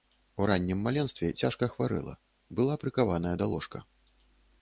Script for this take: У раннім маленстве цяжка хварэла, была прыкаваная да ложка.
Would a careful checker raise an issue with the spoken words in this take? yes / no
no